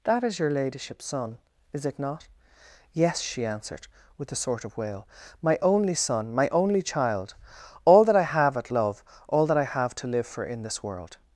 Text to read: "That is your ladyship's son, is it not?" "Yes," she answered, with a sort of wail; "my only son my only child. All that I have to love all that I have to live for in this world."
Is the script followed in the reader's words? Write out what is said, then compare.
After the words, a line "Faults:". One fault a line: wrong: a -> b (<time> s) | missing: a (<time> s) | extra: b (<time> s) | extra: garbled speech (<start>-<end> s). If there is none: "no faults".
"That is your ladyship's son, is it not?" "Yes," she answered, with a sort of wail; "my only son my only child. All that I have at love all that I have to live for in this world."
Faults:
wrong: to -> at (8.6 s)